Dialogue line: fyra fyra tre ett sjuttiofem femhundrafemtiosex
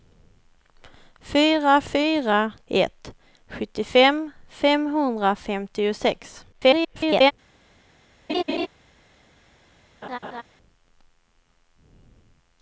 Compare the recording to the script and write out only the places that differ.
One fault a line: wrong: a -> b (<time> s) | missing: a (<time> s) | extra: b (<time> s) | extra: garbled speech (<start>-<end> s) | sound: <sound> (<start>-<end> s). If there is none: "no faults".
missing: tre (2.5 s)
extra: garbled speech (6.5-7.3 s)
sound: laugh (8.3-8.7 s)
sound: laugh (10.0-10.4 s)